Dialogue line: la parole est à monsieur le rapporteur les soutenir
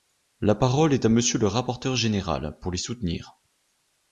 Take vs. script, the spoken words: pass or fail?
fail